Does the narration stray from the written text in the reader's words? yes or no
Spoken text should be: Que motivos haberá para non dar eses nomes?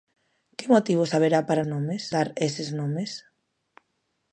yes